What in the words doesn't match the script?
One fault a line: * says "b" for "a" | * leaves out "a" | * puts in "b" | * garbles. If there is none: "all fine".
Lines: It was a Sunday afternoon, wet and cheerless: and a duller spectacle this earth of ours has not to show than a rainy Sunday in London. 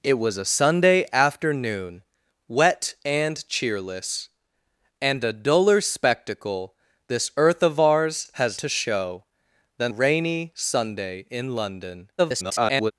* leaves out "not"
* leaves out "a"
* garbles